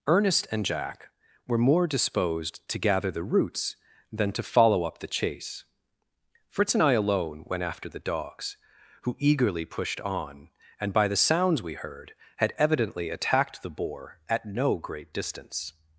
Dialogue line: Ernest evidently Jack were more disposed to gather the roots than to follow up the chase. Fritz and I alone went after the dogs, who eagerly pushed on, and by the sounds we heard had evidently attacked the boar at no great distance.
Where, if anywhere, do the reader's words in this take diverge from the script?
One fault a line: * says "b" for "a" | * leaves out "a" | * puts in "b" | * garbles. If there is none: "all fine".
* says "and" for "evidently"